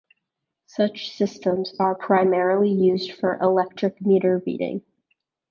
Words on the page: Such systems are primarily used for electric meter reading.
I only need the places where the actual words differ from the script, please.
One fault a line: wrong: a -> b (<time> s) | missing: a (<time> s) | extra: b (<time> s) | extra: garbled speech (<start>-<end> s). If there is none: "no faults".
no faults